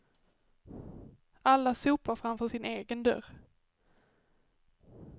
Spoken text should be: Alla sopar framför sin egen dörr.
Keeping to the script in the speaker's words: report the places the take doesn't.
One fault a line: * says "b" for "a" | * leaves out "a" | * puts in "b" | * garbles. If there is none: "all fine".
all fine